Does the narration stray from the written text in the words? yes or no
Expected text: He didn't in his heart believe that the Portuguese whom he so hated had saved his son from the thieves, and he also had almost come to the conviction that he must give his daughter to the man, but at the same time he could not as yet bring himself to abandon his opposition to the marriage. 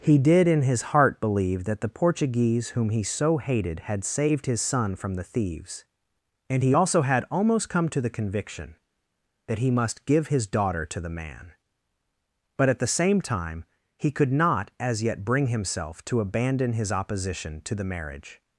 yes